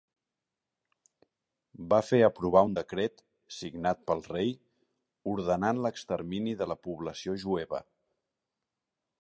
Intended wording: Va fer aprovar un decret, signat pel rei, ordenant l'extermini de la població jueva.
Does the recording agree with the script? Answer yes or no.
yes